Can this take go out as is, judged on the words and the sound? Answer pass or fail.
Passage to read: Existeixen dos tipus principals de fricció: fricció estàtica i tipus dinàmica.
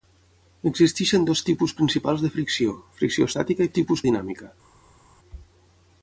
pass